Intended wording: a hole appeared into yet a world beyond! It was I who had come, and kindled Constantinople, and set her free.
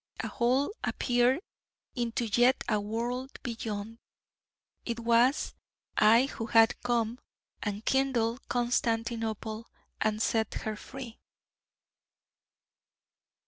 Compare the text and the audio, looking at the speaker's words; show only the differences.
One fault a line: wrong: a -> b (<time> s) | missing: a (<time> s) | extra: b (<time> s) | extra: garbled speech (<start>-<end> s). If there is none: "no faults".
no faults